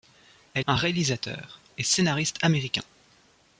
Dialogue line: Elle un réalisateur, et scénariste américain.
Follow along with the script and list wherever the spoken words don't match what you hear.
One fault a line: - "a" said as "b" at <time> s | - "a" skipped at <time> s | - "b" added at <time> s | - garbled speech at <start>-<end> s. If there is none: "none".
none